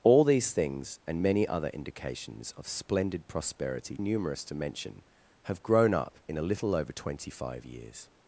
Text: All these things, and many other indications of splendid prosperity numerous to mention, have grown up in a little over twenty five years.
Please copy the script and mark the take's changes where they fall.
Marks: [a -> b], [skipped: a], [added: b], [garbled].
All these things, and many other indications of splendid prosperity numerous to mention, have grown up in a little over twenty five years.